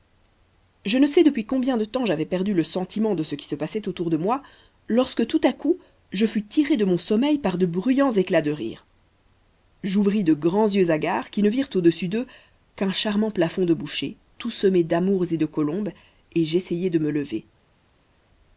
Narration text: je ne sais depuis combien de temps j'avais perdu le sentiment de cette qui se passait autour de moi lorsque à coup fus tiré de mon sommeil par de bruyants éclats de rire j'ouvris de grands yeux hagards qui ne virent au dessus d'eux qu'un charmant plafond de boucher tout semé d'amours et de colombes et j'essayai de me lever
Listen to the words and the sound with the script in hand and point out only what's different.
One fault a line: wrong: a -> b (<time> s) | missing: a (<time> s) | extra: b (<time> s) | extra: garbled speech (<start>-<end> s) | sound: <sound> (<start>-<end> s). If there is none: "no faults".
wrong: cette -> ce (3.2 s)
extra: tout (5.3 s)
extra: je (6.1 s)